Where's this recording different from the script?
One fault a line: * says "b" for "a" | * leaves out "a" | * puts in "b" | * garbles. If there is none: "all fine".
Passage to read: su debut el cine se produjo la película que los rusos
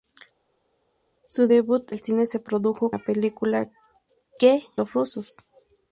all fine